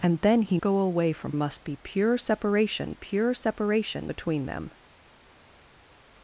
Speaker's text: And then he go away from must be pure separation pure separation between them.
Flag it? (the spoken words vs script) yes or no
no